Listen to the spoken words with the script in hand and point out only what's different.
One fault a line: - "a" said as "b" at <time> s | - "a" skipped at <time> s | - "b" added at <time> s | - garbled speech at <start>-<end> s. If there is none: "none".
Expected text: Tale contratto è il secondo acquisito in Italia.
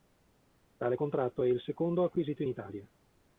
none